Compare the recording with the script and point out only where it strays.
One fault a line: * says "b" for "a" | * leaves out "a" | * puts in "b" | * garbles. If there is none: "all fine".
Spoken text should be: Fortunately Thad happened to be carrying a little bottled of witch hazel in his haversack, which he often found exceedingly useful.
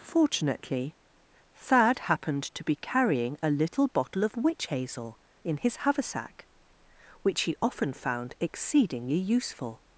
* says "bottle" for "bottled"